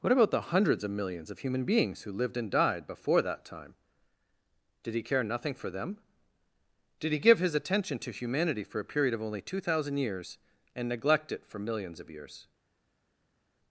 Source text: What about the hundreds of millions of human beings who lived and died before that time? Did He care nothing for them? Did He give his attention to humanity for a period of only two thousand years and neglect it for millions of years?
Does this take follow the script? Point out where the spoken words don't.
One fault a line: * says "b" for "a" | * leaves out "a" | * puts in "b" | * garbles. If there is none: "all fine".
all fine